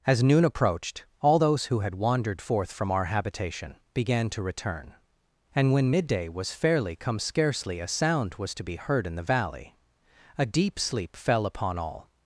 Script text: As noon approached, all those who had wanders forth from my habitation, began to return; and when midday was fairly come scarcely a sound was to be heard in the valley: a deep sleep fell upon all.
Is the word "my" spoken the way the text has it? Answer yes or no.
no